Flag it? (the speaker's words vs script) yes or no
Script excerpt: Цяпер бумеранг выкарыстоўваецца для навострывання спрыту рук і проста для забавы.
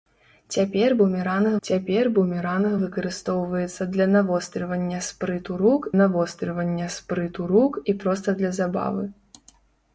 yes